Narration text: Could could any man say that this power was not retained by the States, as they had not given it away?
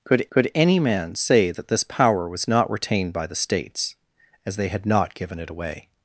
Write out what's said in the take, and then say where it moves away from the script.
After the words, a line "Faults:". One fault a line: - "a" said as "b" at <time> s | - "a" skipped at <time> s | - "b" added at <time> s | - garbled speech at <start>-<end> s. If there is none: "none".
Could could any man say that this power was not retained by the States, as they had not given it away?
Faults:
none